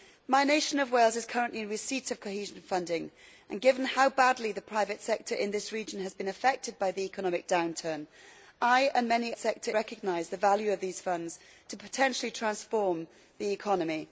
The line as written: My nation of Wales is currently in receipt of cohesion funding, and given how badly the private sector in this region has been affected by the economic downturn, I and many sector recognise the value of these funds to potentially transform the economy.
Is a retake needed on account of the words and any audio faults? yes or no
no